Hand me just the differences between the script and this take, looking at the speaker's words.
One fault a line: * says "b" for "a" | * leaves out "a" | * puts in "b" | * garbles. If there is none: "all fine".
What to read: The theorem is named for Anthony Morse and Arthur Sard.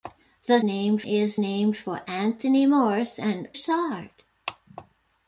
* says "named" for "theorem"
* leaves out "Arthur"